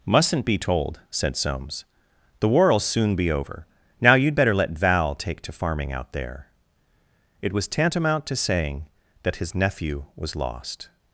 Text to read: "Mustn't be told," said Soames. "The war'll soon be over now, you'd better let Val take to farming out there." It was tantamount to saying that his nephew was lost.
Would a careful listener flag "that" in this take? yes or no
no